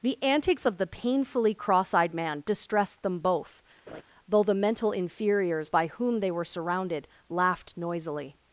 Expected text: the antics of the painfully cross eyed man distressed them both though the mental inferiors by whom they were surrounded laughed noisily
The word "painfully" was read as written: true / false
true